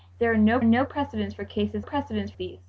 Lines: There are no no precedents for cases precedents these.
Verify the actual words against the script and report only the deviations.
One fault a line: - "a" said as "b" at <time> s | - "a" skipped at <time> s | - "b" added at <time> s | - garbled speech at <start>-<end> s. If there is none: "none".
none